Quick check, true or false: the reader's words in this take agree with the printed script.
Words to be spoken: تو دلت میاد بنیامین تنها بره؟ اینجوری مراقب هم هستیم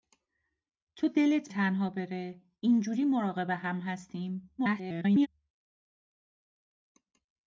false